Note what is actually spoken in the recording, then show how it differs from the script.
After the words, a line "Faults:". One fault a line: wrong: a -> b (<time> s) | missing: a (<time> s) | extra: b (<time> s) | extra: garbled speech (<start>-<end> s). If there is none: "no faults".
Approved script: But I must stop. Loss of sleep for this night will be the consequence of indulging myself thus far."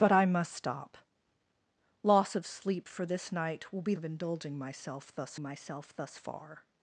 But I must stop. Loss of sleep for this night will be of indulging myself thus myself thus far."
Faults:
wrong: the consequence of indulging -> of indulging myself thus (4.0 s)